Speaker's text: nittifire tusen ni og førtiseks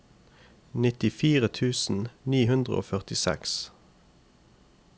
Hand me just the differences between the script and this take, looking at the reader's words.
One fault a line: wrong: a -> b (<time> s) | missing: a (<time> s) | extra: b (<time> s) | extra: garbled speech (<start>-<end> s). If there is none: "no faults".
extra: hundre (2.5 s)